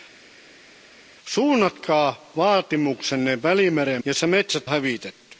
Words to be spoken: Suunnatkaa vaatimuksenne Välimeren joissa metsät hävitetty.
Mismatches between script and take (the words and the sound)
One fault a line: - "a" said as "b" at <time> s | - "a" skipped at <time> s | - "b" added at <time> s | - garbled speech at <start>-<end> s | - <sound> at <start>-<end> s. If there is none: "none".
none